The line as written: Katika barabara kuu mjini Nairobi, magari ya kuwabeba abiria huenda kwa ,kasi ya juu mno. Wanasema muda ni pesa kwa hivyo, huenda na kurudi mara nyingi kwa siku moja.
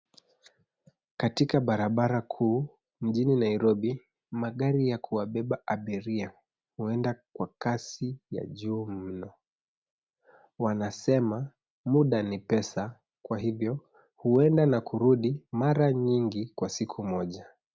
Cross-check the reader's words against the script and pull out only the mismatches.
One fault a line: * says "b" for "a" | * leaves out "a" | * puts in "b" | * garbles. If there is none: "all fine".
all fine